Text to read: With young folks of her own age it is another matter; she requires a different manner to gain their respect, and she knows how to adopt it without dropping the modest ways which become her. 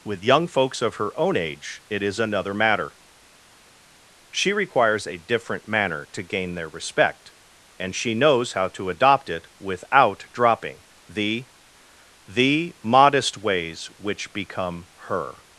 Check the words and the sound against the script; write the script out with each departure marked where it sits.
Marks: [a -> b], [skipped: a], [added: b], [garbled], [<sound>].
With young folks of her own age it is another matter; she requires a different manner to gain their respect, and she knows how to adopt it without dropping the [added: the] modest ways which become her.